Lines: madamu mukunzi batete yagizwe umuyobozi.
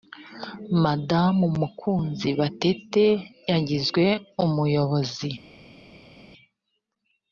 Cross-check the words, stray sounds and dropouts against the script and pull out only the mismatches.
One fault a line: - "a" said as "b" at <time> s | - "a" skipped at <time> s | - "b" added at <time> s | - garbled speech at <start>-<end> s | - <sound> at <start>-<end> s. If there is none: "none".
none